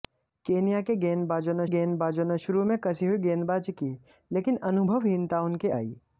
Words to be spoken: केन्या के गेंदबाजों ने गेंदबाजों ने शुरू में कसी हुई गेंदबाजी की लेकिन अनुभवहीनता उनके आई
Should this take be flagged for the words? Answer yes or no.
no